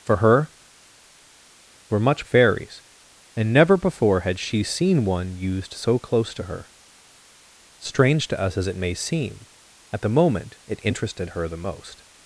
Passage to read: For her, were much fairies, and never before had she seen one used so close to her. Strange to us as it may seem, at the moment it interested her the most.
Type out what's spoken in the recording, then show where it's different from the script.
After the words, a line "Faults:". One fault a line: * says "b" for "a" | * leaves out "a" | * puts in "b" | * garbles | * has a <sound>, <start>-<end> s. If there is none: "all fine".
For her, were much fairies, and never before had she seen one used so close to her. Strange to us as it may seem, at the moment it interested her the most.
Faults:
all fine